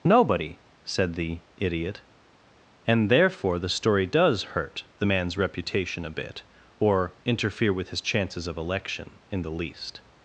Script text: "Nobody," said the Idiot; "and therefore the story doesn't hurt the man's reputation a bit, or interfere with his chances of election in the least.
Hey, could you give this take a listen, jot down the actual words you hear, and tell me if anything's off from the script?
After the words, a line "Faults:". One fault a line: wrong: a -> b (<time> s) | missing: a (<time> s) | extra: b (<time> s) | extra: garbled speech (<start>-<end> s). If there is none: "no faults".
"Nobody," said the Idiot; "and therefore the story does hurt the man's reputation a bit, or interfere with his chances of election in the least.
Faults:
wrong: doesn't -> does (4.1 s)